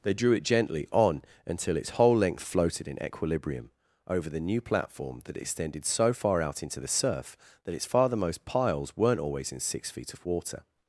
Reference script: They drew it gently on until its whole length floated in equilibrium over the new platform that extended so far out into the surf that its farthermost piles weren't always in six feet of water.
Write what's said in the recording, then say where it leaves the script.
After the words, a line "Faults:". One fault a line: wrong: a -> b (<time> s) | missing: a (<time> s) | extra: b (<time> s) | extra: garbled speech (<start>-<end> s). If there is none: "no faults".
They drew it gently on until its whole length floated in equilibrium over the new platform that extended so far out into the surf that its farthermost piles weren't always in six feet of water.
Faults:
no faults